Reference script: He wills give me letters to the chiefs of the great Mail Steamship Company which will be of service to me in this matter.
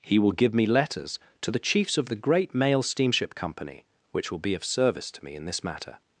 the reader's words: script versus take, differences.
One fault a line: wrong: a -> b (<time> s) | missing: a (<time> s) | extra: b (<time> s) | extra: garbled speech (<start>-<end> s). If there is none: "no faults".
wrong: wills -> will (0.2 s)